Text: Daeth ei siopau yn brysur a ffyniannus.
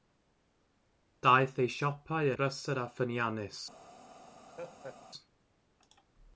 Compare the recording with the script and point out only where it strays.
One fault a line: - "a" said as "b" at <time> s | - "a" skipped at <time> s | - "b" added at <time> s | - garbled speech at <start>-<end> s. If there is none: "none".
- "yn" skipped at 2.3 s